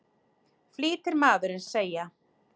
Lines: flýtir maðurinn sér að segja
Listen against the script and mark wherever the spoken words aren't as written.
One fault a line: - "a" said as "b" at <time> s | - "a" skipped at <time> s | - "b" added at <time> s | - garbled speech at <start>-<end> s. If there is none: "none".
- "sér" skipped at 1.6 s